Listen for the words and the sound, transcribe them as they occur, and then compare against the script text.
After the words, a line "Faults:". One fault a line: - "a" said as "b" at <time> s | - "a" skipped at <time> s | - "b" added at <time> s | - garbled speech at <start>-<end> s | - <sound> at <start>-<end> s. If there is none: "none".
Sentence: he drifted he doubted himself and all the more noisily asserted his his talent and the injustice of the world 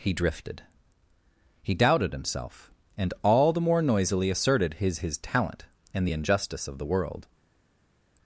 he drifted he doubted himself and all the more noisily asserted his his talent and the injustice of the world
Faults:
none